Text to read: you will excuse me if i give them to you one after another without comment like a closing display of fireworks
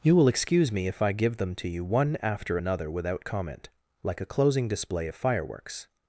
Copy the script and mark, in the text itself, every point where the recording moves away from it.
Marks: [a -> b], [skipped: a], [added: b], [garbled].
you will excuse me if i give them to you one after another without comment like a closing display of fireworks